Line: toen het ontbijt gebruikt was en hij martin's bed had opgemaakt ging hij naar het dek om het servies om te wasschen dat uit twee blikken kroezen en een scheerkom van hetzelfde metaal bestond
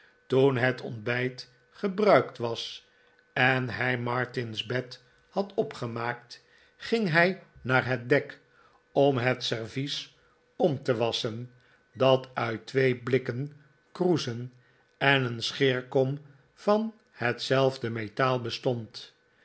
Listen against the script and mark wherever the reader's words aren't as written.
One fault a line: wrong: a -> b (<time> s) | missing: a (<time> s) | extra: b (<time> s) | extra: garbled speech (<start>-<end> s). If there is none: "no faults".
no faults